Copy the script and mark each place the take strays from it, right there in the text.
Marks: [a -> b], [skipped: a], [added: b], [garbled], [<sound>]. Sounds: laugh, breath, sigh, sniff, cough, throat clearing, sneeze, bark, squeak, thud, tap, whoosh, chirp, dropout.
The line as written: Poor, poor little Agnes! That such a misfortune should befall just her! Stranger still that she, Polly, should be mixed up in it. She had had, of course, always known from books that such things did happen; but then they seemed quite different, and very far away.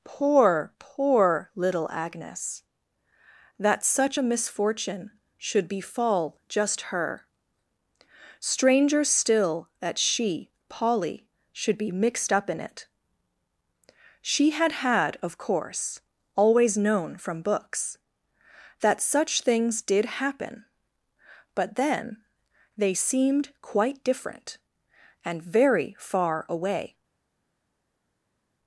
Poor, poor little Agnes! That such a misfortune should befall just her! Stranger still that she, Polly, should be mixed up in it. She had had, of course, always known from books that such things did happen; but then they seemed quite different, and very far away.